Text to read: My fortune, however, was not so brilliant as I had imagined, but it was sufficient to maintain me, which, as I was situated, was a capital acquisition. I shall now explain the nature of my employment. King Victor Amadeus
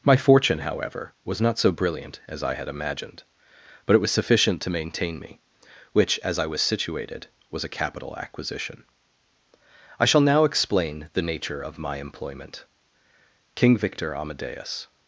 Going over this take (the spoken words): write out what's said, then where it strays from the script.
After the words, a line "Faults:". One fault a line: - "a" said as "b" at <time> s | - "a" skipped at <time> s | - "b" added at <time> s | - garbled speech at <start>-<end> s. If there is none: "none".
My fortune, however, was not so brilliant as I had imagined, but it was sufficient to maintain me, which, as I was situated, was a capital acquisition. I shall now explain the nature of my employment. King Victor Amadeus
Faults:
none